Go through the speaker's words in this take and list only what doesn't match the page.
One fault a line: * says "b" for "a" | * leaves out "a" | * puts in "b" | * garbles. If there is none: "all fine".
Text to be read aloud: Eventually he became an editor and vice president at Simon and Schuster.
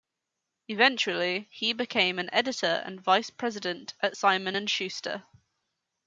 all fine